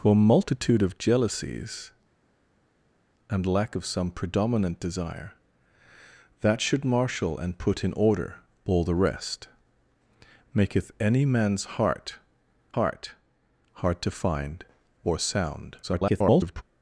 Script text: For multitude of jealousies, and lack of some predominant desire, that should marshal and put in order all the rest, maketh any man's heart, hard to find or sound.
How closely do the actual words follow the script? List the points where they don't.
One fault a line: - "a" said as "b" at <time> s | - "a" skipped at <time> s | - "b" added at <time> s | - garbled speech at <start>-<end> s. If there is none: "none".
- "heart" added at 12.8 s
- garbled speech at 15.8-16.6 s